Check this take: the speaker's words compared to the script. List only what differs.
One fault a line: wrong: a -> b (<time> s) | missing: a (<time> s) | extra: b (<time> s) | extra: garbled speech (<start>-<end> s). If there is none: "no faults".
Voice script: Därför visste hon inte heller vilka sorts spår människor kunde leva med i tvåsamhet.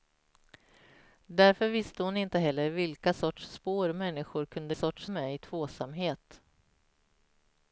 wrong: leva -> sorts (4.7 s)